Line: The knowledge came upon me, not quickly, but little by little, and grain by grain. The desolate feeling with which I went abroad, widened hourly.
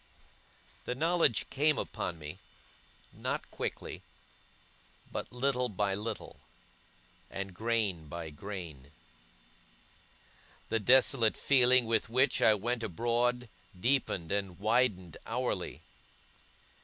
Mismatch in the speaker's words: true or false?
true